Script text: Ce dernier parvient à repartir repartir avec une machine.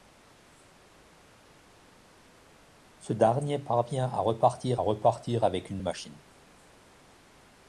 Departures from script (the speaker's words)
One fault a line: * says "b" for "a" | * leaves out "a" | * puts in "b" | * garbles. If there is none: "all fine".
all fine